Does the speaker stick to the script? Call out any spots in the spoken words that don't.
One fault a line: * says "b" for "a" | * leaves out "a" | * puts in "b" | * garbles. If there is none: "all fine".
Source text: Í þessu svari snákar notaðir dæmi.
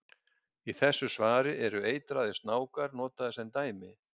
* puts in "eru eitraðir"
* puts in "sem"